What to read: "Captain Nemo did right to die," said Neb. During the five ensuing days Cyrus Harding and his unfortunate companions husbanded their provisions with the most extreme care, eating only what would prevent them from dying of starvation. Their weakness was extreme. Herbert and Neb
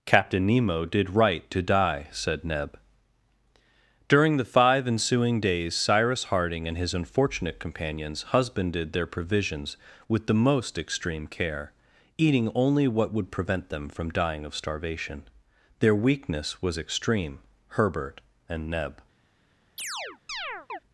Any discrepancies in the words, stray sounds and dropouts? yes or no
yes